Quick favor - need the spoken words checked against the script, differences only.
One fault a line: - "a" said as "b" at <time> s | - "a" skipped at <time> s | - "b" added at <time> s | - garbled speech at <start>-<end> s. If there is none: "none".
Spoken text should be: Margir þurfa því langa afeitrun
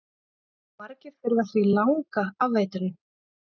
none